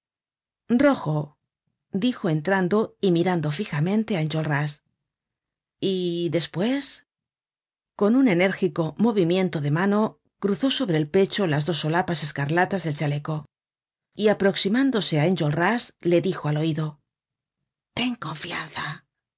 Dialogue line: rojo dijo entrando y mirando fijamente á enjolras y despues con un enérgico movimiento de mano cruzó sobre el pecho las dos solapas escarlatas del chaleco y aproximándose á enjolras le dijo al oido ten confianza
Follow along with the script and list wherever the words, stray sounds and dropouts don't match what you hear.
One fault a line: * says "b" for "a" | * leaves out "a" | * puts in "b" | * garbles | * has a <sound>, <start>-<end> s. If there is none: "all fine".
all fine